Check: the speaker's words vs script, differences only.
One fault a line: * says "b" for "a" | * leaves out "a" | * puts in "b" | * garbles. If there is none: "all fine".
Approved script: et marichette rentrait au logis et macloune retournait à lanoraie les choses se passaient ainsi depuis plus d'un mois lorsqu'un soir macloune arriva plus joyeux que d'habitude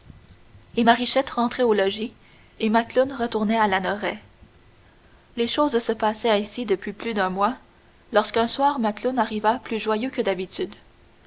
all fine